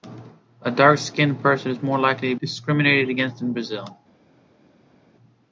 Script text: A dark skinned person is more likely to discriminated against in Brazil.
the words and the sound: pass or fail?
pass